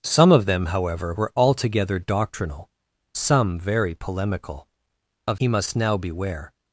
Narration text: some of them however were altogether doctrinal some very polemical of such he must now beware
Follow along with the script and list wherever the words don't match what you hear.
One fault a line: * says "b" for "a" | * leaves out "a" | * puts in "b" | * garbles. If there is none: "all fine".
* leaves out "such"